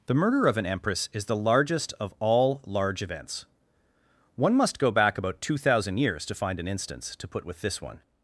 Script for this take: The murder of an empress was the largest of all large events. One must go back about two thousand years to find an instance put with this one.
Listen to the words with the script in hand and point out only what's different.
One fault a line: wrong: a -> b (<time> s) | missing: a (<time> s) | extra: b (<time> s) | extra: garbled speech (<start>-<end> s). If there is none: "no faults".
wrong: was -> is (1.1 s)
extra: to (7.2 s)